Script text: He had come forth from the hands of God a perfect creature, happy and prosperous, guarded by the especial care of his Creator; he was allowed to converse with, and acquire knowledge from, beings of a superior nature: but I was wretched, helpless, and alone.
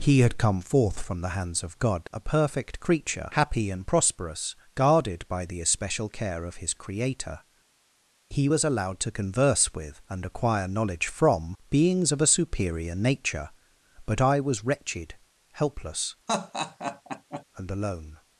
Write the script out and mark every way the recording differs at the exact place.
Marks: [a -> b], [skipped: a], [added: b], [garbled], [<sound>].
He had come forth from the hands of God a perfect creature, happy and prosperous, guarded by the especial care of his Creator; he was allowed to converse with, and acquire knowledge from, beings of a superior nature: but I was wretched, helpless, [laugh] and alone.